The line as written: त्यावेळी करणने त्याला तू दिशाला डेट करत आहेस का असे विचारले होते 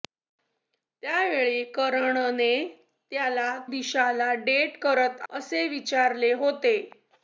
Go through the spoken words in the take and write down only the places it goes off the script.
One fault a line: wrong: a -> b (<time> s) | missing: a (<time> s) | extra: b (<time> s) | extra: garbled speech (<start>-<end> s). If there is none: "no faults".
missing: तू (3.6 s)
missing: आहेस का (5.2 s)